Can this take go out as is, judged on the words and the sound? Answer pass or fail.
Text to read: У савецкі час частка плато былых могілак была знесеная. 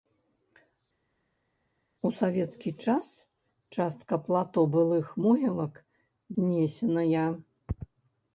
fail